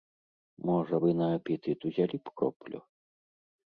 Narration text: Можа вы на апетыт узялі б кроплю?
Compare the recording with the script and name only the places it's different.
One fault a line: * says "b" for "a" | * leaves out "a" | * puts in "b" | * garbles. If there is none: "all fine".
all fine